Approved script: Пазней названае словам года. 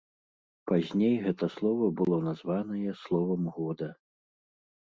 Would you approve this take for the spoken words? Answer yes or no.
no